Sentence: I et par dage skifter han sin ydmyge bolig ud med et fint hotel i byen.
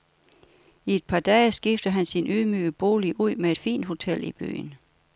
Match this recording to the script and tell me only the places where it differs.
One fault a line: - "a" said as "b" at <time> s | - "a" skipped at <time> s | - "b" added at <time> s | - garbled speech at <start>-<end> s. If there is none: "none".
none